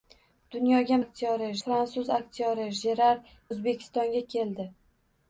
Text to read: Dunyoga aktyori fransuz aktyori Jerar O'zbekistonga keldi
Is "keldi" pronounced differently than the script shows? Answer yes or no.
no